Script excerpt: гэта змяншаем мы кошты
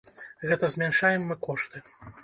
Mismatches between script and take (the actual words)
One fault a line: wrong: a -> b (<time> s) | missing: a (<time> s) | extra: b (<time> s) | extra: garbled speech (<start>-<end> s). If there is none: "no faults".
no faults